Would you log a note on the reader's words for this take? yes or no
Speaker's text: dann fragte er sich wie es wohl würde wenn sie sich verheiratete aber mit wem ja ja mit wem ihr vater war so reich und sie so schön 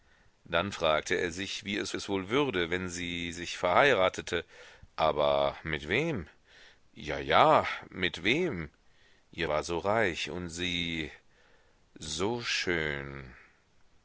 yes